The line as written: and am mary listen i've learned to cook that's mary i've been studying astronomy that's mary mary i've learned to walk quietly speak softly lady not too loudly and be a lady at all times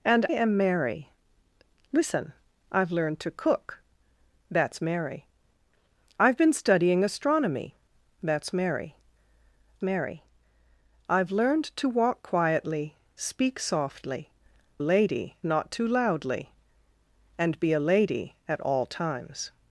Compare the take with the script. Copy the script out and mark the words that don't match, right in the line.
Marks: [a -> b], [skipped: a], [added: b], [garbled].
and am mary listen i've learned to cook that's mary i've been studying astronomy that's mary mary i've learned to walk quietly speak softly lady not too loudly and be a lady at all times